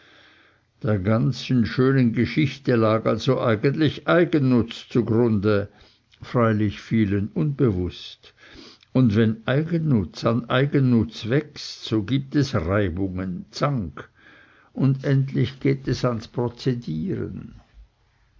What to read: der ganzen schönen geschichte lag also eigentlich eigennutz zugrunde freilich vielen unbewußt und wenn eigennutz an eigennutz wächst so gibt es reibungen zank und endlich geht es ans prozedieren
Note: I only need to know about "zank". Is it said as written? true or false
true